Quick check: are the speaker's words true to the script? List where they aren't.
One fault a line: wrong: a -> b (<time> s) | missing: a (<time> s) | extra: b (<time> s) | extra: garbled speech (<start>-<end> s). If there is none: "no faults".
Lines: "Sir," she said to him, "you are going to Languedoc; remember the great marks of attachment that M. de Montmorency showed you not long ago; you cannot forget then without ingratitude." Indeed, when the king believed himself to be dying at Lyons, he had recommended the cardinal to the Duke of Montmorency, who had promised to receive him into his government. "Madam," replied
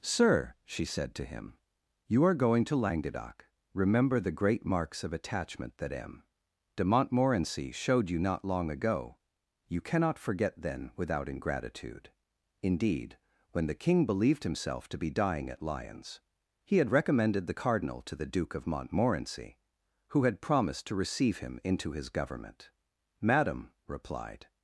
no faults